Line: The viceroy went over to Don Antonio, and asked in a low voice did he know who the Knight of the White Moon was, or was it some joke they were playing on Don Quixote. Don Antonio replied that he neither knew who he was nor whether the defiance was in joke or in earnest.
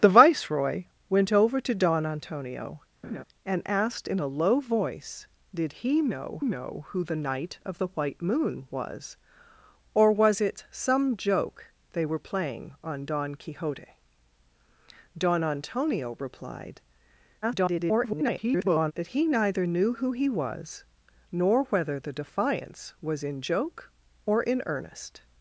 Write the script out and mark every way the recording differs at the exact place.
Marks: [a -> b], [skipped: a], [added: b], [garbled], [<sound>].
The viceroy went over to Don Antonio, [laugh] and asked in a low voice did he know [added: know] who the Knight of the White Moon was, or was it some joke they were playing on Don Quixote. Don Antonio replied [garbled] that he neither knew who he was nor whether the defiance was in joke or in earnest.